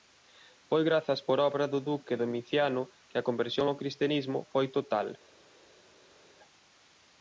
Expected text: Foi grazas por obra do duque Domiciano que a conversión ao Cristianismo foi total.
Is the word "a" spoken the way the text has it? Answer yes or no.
yes